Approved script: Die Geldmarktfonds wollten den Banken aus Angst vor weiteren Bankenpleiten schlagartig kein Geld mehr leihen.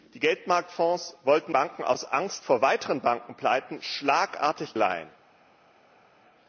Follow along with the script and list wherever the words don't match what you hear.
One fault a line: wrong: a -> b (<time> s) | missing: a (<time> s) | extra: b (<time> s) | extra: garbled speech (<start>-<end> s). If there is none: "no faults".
missing: den (1.5 s)
missing: kein Geld mehr (4.7 s)